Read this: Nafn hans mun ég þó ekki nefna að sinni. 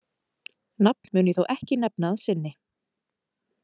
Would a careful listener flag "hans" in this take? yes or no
yes